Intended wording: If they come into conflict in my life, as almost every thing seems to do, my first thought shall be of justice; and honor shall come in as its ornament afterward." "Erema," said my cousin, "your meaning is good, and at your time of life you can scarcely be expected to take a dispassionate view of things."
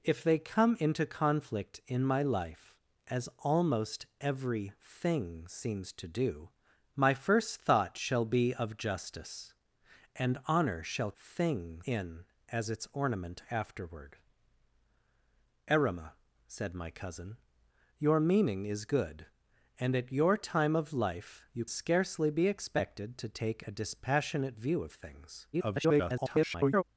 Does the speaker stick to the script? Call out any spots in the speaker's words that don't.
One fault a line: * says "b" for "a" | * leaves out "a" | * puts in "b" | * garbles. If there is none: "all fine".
* says "thing" for "come"
* leaves out "can"
* garbles